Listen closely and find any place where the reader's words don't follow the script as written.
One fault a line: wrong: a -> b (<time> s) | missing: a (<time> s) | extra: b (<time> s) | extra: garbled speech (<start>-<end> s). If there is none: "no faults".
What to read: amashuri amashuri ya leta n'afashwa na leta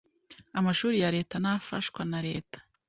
missing: amashuri (0.9 s)